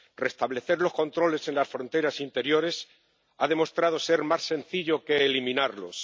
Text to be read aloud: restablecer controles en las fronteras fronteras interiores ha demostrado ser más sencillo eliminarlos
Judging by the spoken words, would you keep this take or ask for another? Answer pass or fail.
fail